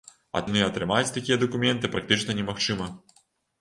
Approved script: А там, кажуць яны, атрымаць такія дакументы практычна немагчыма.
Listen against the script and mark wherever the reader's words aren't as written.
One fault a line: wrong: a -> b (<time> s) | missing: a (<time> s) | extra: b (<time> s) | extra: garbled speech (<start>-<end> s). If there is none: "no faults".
missing: там кажуць (0.4 s)